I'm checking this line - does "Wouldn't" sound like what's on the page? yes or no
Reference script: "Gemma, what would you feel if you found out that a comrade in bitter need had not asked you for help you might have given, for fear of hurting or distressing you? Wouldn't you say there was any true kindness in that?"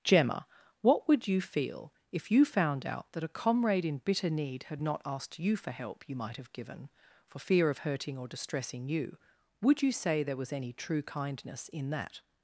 no